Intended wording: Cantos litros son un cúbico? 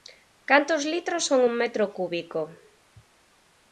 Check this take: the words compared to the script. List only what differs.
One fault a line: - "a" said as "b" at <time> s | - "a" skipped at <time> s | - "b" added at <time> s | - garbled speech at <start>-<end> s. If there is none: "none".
- "metro" added at 1.6 s